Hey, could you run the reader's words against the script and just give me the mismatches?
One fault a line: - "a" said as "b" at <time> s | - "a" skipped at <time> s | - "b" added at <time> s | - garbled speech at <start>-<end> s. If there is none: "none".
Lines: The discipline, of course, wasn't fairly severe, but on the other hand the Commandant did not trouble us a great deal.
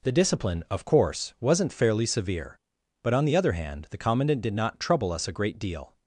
none